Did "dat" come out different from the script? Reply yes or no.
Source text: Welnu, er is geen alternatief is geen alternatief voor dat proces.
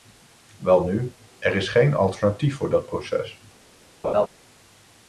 no